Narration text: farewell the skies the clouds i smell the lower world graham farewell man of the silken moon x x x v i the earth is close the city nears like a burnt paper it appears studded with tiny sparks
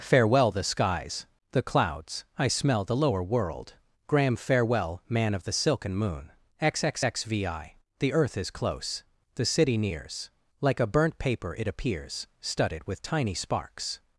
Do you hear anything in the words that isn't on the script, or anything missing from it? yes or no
no